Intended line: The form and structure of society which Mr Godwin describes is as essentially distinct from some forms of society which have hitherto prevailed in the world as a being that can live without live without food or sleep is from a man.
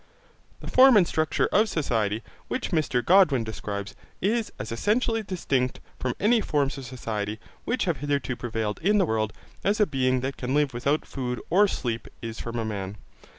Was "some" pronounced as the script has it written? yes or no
no